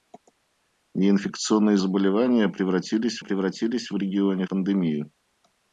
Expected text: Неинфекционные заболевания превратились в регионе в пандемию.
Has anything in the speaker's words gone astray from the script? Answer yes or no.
yes